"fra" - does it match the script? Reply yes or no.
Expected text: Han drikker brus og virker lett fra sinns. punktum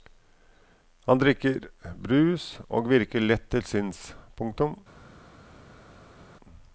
no